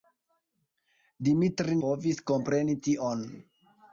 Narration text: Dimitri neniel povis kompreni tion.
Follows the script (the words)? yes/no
no